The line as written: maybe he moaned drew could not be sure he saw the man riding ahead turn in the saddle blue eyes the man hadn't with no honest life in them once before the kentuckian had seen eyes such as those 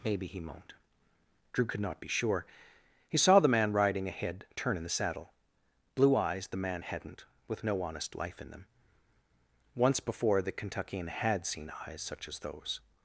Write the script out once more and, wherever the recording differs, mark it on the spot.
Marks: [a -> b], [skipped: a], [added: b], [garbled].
maybe he moaned drew could not be sure he saw the man riding ahead turn in the saddle blue eyes the man hadn't with no honest life in them once before the kentuckian had seen eyes such as those